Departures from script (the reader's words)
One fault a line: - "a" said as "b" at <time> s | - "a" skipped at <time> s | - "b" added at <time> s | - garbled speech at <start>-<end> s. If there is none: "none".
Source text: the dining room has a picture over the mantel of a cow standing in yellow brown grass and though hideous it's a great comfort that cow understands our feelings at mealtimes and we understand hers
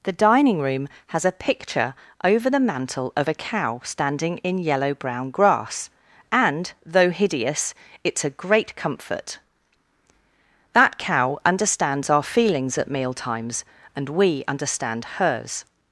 none